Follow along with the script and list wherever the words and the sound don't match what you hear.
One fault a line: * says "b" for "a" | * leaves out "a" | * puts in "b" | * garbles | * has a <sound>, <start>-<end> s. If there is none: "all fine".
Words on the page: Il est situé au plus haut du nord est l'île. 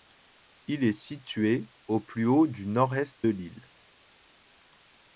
all fine